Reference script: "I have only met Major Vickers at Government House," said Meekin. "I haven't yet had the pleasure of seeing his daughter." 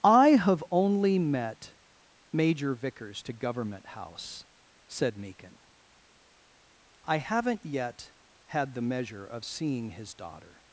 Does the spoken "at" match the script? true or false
false